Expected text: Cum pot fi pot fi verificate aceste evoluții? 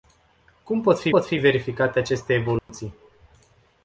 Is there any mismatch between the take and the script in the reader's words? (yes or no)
no